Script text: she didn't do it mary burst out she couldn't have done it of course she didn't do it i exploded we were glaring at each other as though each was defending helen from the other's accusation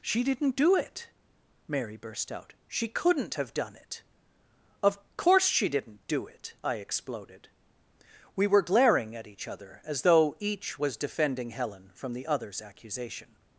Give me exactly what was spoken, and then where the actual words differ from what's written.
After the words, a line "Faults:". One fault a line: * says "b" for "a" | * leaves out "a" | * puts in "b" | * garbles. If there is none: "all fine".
she didn't do it mary burst out she couldn't have done it of course she didn't do it i exploded we were glaring at each other as though each was defending helen from the other's accusation
Faults:
all fine